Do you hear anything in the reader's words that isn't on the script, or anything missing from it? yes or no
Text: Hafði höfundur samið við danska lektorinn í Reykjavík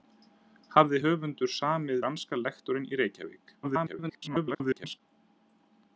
yes